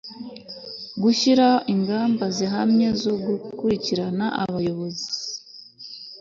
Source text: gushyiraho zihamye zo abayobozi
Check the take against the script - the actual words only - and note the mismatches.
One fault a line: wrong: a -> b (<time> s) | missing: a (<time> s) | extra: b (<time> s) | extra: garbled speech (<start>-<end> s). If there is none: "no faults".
extra: ingamba (1.7 s)
extra: gukurikirana (3.3 s)